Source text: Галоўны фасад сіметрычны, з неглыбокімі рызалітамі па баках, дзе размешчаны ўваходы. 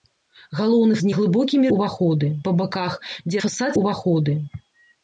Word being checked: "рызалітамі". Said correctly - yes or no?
no